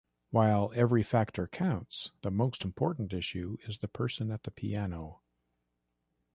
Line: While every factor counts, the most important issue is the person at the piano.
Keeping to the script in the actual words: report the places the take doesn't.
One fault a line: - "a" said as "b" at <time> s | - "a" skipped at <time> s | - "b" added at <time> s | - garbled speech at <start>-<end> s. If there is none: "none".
none